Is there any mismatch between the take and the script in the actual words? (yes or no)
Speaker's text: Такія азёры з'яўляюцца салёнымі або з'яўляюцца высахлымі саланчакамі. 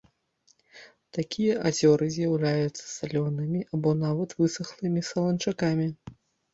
yes